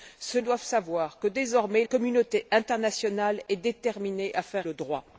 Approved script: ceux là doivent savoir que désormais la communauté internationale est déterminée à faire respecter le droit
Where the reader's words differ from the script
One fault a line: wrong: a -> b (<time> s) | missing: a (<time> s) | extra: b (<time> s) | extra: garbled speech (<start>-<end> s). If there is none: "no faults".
missing: là (0.4 s)
missing: la (1.8 s)
missing: respecter (4.7 s)